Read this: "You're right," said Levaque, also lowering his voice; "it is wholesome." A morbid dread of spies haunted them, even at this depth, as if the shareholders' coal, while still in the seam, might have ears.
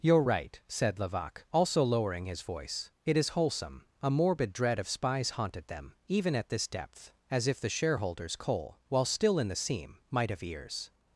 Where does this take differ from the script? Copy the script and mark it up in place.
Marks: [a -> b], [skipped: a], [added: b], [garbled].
"You're right," said Levaque, also lowering his voice; "it is wholesome." A morbid dread of spies haunted them, even at this depth, as if the shareholders' coal, while still in the seam, might have ears.